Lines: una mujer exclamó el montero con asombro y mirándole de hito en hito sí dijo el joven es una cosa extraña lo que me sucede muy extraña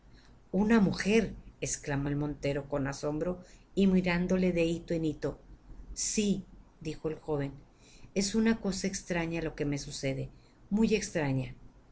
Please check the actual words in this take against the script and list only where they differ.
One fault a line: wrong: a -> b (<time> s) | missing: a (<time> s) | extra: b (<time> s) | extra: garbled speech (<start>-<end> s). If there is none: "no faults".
no faults